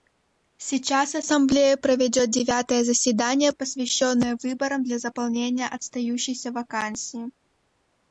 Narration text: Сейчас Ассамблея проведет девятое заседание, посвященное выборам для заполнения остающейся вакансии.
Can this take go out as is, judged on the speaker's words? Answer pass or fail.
pass